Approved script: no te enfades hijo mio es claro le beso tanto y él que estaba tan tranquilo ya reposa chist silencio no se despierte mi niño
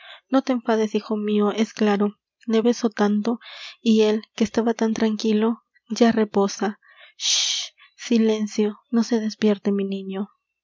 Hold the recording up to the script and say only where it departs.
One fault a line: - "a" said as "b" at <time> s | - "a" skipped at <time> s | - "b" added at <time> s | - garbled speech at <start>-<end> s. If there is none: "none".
none